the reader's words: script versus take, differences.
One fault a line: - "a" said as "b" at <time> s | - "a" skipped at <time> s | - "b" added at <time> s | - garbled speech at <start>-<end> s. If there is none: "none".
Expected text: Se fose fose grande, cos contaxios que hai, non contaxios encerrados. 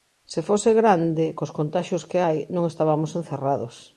- "fose" skipped at 0.7 s
- "contaxios" said as "estabamos" at 2.7 s